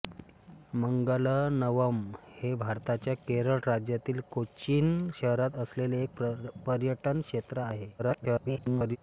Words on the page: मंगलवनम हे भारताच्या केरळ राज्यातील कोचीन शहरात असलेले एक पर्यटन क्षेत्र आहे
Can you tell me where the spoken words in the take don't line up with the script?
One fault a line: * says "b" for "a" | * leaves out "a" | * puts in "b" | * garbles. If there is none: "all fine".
* garbles